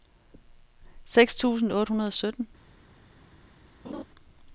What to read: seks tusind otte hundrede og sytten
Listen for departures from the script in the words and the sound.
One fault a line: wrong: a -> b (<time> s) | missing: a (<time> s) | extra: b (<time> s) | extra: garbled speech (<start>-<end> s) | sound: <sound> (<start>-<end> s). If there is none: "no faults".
sound: laugh (3.8-4.0 s)